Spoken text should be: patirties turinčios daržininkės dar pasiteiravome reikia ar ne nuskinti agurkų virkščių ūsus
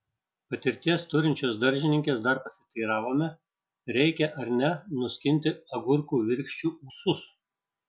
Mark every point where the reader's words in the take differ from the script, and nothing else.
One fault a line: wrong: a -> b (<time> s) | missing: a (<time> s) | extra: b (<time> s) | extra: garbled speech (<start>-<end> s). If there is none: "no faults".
no faults